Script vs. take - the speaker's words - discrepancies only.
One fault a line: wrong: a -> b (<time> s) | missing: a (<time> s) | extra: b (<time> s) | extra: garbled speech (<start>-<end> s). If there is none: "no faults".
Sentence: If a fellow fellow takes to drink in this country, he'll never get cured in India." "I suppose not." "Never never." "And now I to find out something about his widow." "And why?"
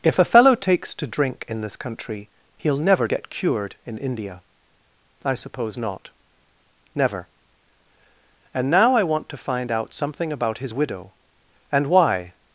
missing: fellow (0.6 s)
missing: never (7.3 s)
extra: want (9.0 s)